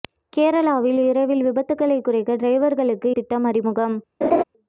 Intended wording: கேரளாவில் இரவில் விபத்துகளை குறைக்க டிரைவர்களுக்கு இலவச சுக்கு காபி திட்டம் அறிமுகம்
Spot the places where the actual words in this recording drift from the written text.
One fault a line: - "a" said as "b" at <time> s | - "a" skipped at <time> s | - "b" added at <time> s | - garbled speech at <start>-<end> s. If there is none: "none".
- "இலவச சுக்கு காபி" skipped at 3.1 s